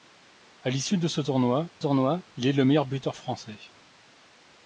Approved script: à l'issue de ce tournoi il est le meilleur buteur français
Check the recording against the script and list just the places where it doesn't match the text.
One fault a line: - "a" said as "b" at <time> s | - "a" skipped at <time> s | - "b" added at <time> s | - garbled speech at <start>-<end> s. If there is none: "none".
- "tournoi" added at 1.8 s